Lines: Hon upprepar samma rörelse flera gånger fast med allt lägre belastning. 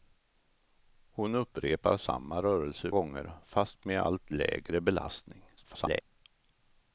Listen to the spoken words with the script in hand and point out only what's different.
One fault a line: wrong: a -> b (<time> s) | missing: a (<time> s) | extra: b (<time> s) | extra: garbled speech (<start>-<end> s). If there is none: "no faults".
missing: flera (2.9 s)
extra: garbled speech (5.6-6.0 s)